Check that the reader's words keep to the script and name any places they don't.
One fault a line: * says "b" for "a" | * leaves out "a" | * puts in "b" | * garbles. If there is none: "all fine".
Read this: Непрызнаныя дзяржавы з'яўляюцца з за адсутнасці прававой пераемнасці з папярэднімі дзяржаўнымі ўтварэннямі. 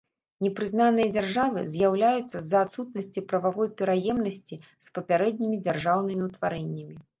all fine